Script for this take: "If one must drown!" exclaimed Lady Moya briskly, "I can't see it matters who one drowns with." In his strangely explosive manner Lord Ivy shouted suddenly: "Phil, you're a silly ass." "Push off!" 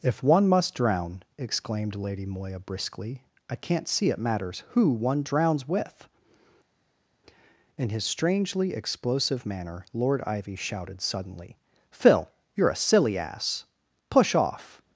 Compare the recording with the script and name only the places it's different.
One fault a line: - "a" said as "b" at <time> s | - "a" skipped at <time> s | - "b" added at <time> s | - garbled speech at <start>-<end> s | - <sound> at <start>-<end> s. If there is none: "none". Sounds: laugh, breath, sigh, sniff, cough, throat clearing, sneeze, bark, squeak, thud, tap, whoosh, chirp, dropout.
none